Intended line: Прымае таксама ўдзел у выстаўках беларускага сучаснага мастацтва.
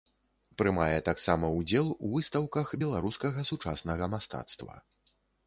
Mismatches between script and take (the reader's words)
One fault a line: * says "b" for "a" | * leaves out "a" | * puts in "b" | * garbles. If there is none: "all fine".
all fine